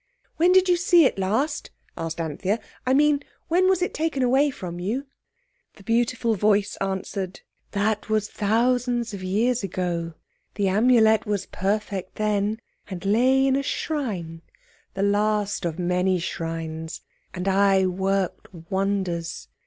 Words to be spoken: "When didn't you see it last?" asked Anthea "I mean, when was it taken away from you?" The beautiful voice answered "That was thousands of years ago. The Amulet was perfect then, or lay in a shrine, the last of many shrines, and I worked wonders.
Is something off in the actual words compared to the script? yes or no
yes